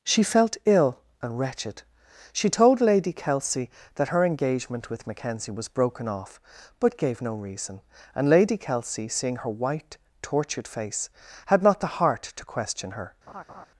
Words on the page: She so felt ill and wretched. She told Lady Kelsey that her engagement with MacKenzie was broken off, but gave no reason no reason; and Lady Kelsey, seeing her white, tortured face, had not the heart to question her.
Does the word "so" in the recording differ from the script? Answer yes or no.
yes